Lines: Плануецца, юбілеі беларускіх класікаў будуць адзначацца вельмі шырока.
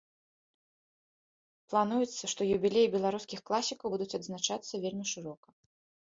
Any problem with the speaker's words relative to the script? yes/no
yes